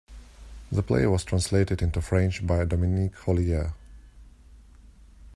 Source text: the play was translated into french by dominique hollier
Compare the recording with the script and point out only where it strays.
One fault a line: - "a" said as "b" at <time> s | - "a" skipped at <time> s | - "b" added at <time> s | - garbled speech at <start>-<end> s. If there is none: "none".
none